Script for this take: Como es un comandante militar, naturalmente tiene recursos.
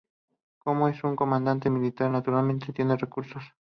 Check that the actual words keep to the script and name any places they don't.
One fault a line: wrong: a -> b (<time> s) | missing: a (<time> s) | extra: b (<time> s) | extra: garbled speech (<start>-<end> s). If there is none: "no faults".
no faults